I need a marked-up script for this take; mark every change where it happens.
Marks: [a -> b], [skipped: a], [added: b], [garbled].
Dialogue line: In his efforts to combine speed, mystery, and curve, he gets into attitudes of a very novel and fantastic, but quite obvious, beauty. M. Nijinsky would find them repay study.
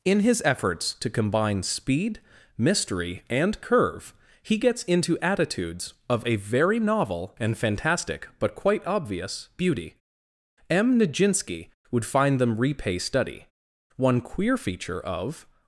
In his efforts to combine speed, mystery, and curve, he gets into attitudes of a very novel and fantastic, but quite obvious, beauty. M. Nijinsky would find them repay study. [added: One queer feature of]